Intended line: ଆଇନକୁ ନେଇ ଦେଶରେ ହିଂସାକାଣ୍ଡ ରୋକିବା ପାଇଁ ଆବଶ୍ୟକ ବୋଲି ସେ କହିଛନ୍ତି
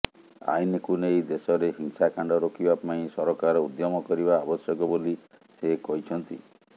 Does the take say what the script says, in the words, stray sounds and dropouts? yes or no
no